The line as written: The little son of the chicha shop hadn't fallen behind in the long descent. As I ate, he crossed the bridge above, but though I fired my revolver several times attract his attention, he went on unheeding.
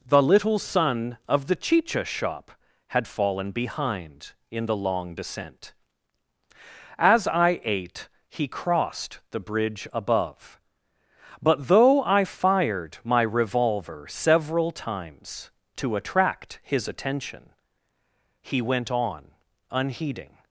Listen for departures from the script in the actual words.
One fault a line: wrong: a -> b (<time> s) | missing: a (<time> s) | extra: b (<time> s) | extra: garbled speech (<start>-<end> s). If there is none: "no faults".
wrong: hadn't -> had (2.9 s)
extra: to (15.8 s)